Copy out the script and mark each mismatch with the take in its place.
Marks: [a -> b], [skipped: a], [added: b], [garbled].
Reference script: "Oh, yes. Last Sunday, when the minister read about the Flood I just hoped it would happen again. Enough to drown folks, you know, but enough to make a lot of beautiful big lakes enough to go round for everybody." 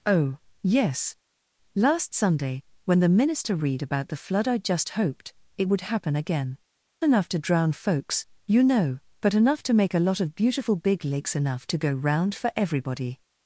"Oh, yes. Last Sunday, when the minister read about the Flood I just hoped it would happen again. Enough to drown folks, you know, but enough to make a lot of beautiful big lakes enough to go round for everybody."